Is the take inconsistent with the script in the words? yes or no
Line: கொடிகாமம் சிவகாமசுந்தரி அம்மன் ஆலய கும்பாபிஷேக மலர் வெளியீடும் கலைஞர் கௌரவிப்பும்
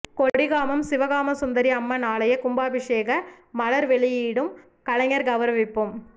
no